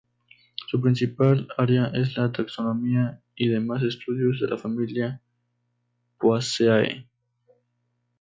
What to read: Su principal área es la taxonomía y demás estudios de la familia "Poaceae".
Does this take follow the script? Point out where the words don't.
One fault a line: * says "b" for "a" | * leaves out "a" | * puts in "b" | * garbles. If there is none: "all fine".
all fine